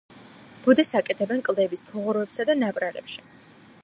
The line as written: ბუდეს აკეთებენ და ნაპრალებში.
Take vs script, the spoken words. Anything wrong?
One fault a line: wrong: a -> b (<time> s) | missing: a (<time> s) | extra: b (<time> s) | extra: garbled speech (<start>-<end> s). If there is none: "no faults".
extra: კლდეების ფუღუროებსა (1.5 s)